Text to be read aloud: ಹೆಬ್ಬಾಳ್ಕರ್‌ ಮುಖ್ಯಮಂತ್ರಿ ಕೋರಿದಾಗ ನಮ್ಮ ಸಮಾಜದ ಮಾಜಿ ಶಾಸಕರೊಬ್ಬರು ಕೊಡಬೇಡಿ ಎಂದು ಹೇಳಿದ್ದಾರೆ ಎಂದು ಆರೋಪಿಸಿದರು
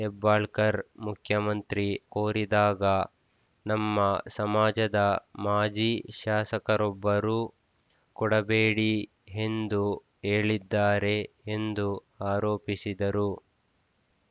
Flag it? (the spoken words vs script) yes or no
no